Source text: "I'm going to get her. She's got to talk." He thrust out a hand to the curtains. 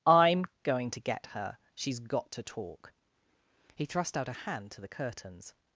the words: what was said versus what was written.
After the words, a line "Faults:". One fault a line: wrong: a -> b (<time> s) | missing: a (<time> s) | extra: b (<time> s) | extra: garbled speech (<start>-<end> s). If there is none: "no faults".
"I'm going to get her. She's got to talk." He thrust out a hand to the curtains.
Faults:
no faults